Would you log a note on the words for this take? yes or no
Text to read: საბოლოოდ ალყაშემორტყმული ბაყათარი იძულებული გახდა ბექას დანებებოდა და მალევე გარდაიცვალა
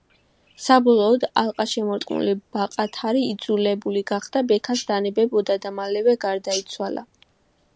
no